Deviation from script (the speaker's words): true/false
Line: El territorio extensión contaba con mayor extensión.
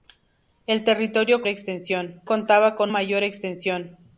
false